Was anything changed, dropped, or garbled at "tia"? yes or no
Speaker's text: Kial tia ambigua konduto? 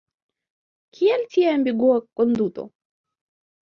no